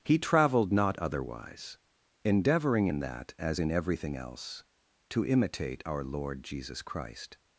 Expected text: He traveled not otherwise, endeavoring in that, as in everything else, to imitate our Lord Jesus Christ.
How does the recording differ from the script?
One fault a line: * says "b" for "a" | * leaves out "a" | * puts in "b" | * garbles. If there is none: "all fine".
all fine